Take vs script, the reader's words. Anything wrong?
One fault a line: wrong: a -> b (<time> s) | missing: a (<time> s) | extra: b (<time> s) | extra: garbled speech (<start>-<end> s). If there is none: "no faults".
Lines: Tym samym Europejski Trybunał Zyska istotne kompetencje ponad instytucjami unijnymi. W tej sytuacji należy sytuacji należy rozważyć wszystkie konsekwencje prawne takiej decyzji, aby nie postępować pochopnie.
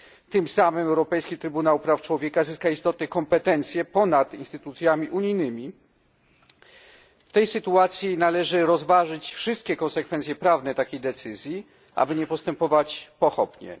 extra: Praw Człowieka (1.8 s)
missing: sytuacji należy (8.7 s)